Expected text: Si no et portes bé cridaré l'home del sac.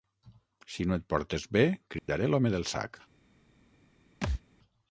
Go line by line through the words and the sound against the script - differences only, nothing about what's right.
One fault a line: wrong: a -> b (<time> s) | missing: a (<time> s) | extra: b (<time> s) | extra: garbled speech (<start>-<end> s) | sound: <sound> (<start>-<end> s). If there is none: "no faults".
sound: dropout (2.0-2.1 s)
sound: thud (4.2-4.4 s)